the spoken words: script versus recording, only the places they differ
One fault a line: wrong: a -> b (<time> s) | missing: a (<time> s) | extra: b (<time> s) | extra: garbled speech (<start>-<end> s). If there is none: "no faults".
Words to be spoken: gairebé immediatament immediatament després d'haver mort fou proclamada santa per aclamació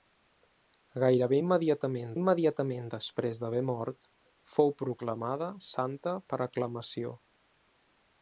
no faults